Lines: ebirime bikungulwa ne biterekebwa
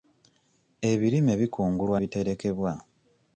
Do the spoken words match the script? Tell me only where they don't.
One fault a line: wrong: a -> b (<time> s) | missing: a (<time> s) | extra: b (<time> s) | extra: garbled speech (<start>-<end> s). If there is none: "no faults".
missing: ne (2.0 s)